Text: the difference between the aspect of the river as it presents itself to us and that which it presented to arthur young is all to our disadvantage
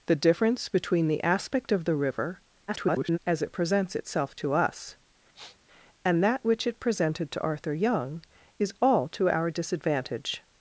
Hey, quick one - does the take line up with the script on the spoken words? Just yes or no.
no